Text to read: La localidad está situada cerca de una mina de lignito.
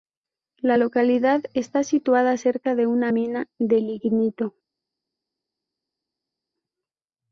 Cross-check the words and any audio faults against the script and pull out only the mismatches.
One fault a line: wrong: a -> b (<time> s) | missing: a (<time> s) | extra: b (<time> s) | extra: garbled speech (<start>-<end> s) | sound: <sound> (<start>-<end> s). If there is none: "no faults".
no faults